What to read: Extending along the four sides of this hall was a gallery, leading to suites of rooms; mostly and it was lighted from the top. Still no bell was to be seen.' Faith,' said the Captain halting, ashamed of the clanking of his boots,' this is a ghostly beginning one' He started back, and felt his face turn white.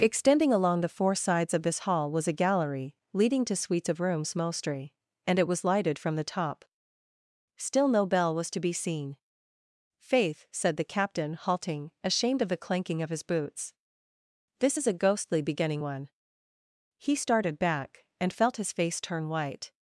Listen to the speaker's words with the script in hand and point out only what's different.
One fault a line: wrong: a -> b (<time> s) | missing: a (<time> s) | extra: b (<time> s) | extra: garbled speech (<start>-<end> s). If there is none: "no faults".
no faults